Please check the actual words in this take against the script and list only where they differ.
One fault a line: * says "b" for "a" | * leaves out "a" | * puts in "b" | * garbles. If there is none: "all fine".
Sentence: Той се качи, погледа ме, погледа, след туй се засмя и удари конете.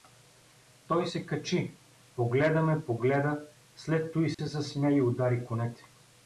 all fine